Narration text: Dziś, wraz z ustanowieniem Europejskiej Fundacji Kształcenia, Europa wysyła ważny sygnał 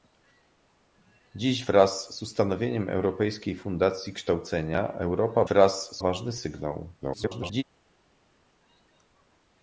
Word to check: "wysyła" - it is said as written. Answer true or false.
false